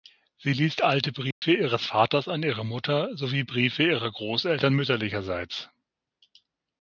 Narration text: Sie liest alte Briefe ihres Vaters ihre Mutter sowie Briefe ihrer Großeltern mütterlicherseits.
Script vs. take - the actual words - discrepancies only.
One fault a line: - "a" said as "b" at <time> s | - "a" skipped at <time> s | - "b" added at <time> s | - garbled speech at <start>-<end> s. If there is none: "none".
- "an" added at 2.3 s